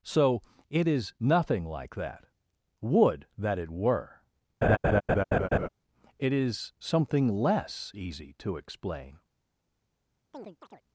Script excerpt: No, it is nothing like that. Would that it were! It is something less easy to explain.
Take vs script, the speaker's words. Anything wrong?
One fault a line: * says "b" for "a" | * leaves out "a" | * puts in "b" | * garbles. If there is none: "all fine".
* says "So" for "No"